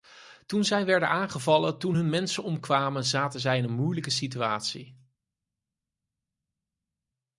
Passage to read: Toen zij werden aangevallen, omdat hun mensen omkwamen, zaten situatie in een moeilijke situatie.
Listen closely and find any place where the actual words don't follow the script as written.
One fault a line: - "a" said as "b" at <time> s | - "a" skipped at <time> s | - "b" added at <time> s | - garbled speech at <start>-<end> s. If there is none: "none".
- "omdat" said as "toen" at 1.8 s
- "situatie" said as "zij" at 3.4 s